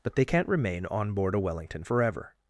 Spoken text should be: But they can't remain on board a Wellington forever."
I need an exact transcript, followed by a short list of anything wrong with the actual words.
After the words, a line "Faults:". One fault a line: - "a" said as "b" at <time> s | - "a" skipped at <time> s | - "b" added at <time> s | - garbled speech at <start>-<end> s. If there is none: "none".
But they can't remain on board a Wellington forever."
Faults:
none